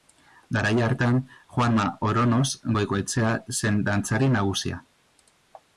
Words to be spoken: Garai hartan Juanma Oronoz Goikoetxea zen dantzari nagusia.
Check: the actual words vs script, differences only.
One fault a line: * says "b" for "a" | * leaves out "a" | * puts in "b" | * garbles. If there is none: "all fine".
all fine